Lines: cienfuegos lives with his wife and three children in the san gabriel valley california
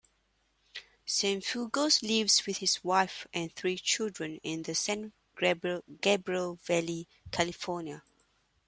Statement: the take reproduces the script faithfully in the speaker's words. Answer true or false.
true